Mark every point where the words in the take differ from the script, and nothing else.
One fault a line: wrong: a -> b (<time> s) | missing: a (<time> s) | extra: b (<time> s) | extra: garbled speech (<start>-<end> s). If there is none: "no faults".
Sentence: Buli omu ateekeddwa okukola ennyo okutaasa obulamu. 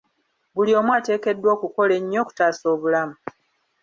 no faults